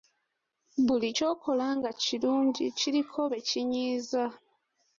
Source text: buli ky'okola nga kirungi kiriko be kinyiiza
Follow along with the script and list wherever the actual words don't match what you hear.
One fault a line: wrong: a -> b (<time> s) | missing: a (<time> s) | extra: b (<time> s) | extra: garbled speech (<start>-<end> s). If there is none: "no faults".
no faults